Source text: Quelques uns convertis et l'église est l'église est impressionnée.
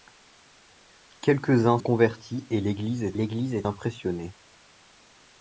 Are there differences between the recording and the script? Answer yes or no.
no